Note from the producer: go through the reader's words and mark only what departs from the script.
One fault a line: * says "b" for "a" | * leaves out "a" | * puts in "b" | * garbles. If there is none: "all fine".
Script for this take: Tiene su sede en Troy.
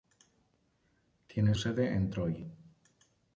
* leaves out "su"